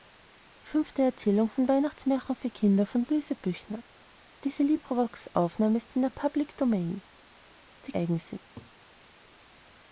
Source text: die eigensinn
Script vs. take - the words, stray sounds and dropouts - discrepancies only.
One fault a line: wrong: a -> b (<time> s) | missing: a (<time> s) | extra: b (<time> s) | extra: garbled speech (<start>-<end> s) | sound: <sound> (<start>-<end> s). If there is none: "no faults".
sound: laugh (8.6-8.7 s)